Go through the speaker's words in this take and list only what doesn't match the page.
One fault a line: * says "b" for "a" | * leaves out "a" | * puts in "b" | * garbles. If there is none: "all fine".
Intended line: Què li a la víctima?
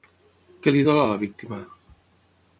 * puts in "dol"